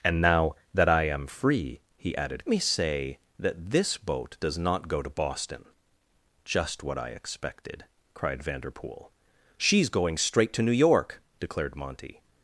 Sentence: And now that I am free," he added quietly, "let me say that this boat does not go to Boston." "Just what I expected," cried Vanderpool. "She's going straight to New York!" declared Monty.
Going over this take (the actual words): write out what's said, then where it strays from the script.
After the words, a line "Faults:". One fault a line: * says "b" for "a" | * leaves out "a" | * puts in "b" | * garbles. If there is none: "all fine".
And now that I am free," he added me say that this boat does not go to Boston." "Just what I expected," cried Vanderpool. "She's going straight to New York!" declared Monty.
Faults:
* leaves out "quietly let"